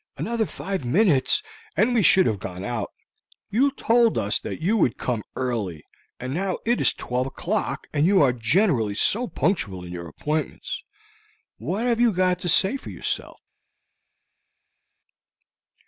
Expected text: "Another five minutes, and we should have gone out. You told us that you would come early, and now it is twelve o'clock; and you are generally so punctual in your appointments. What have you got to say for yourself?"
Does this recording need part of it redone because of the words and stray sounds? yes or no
no